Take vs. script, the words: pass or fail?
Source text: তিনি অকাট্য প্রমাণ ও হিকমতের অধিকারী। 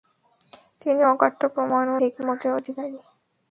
pass